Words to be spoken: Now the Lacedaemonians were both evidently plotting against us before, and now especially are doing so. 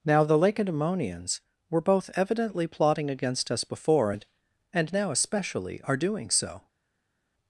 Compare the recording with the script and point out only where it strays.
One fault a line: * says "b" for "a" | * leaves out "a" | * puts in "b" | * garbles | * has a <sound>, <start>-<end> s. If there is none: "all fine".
* puts in "and"